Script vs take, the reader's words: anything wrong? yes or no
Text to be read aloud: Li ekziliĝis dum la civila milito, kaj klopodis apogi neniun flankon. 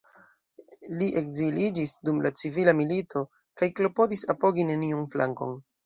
no